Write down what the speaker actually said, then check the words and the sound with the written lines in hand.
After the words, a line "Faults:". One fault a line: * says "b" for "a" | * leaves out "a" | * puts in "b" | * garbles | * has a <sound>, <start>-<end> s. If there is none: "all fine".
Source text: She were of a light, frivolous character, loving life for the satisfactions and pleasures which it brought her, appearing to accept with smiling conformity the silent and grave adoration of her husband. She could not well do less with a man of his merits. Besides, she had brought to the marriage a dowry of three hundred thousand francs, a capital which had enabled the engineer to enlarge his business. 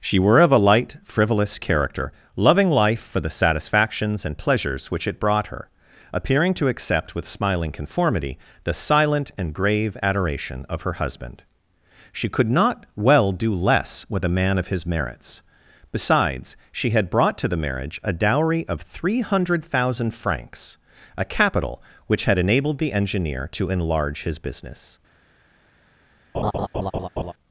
She were of a light, frivolous character, loving life for the satisfactions and pleasures which it brought her, appearing to accept with smiling conformity the silent and grave adoration of her husband. She could not well do less with a man of his merits. Besides, she had brought to the marriage a dowry of three hundred thousand francs, a capital which had enabled the engineer to enlarge his business.
Faults:
* has a laugh, 26.3-27.3 s